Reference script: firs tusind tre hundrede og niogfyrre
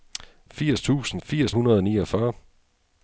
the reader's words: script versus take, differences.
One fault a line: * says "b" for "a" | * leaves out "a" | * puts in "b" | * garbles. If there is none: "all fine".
* says "firs" for "tre"